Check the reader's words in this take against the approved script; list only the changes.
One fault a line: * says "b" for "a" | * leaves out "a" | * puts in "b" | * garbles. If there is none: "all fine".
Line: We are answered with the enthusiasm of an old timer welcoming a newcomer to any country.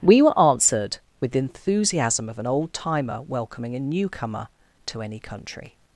* says "were" for "are"